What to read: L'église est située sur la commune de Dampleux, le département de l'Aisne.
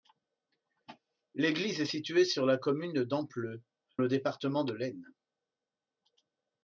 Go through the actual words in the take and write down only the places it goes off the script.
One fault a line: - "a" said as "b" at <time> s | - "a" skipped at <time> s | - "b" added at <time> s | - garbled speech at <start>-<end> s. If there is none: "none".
none